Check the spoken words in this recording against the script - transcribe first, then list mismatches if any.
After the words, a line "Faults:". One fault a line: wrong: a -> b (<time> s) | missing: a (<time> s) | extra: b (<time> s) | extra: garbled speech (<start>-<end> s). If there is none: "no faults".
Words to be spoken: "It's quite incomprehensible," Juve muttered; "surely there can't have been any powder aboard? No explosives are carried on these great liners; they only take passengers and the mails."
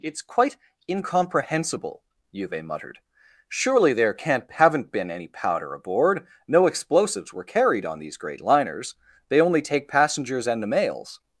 "It's quite incomprehensible," Juve muttered; "surely there can't haven't been any powder aboard? No explosives were carried on these great liners; they only take passengers and the mails."
Faults:
wrong: have -> haven't (4.5 s)
wrong: are -> were (7.3 s)